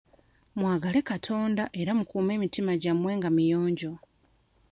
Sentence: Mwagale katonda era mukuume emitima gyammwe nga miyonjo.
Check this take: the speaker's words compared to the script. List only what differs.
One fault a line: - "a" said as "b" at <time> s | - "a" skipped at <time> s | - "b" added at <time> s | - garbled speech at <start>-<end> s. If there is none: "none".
none